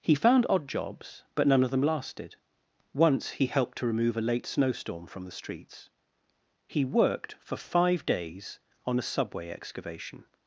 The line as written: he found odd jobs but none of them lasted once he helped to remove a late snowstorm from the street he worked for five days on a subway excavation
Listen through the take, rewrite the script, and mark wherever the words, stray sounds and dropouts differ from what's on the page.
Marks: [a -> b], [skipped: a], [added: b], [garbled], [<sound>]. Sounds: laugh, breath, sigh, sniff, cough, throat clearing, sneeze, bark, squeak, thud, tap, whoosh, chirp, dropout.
he found odd jobs but none of them lasted once he helped to remove a late snowstorm from the [street -> streets] he worked for five days on a subway excavation